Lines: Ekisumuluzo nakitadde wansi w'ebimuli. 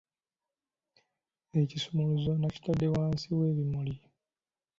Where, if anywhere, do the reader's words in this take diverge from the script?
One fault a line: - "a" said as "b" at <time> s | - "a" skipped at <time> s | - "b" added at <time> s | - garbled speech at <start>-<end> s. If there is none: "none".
none